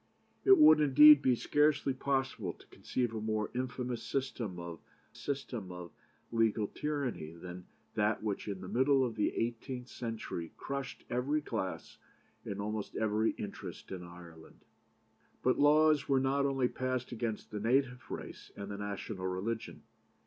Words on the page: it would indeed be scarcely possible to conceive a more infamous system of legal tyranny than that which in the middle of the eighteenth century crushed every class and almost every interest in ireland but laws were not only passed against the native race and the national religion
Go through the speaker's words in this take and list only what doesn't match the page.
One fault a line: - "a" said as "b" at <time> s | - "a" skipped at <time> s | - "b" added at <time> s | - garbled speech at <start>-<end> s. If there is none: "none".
- "system of" added at 5.2 s